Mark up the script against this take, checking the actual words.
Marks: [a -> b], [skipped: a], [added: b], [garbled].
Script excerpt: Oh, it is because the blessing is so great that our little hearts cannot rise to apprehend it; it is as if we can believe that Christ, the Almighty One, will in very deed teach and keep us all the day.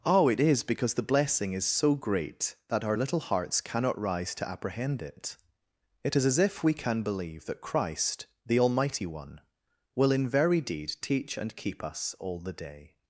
Oh, it is because the blessing is so great that our little hearts cannot rise to apprehend it; it is as if we can believe that Christ, the Almighty One, will in very deed teach and keep us all the day.